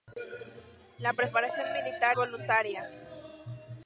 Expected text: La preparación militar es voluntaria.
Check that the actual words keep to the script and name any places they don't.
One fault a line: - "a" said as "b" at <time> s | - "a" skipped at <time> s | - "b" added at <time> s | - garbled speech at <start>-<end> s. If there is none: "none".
- "es" skipped at 2.2 s